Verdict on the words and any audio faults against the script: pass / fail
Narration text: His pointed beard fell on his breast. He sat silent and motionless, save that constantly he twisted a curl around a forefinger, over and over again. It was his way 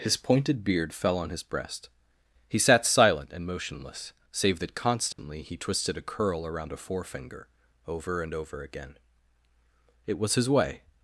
fail